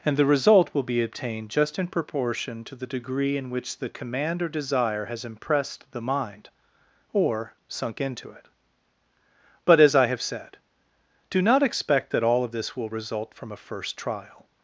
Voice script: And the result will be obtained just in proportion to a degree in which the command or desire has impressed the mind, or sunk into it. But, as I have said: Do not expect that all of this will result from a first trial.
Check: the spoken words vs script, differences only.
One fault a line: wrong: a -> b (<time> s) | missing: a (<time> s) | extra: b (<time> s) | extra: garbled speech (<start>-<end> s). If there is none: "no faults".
wrong: a -> the (2.8 s)